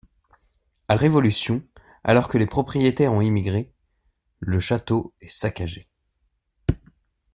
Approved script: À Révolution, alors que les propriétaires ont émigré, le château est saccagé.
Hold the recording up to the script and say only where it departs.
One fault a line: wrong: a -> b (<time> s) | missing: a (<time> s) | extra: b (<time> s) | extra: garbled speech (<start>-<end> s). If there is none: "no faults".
no faults